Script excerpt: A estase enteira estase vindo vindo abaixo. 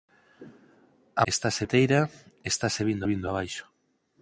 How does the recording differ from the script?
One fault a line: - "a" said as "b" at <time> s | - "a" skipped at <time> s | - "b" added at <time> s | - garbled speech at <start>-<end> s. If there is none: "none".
none